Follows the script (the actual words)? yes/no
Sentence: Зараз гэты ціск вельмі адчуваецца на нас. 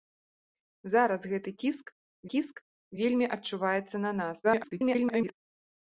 no